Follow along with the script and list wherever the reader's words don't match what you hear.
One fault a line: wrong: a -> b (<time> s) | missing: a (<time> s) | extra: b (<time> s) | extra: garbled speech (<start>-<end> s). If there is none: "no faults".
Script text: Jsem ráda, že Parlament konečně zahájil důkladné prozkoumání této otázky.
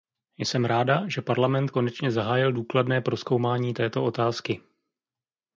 no faults